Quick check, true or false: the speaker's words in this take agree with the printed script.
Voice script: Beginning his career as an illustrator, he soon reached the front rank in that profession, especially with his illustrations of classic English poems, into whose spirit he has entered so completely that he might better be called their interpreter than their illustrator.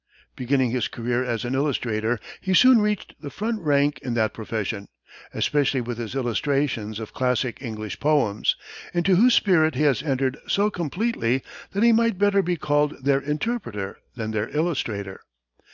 true